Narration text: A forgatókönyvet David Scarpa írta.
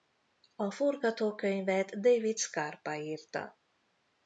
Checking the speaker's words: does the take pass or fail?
pass